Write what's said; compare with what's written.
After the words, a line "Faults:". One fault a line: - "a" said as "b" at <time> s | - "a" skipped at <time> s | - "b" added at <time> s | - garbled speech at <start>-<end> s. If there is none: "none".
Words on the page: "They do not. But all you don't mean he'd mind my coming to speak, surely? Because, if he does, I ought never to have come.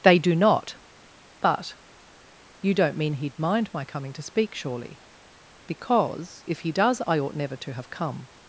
"They do not. But you don't mean he'd mind my coming to speak, surely? Because, if he does, I ought never to have come.
Faults:
- "all" skipped at 1.8 s